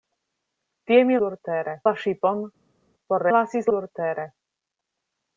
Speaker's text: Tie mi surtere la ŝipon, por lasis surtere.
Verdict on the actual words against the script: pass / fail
pass